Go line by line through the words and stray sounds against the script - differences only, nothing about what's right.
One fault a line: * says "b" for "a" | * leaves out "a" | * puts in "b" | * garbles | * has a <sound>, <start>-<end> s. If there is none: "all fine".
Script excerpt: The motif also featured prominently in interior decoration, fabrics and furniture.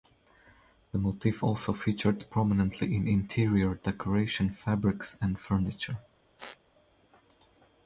* has a squeak, 6.4-6.6 s